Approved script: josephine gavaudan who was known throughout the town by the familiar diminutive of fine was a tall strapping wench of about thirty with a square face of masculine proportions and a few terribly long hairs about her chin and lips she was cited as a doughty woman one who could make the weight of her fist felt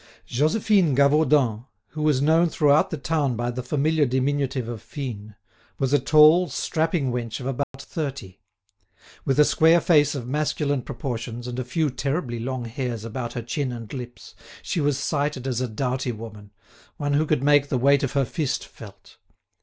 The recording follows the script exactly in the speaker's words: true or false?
true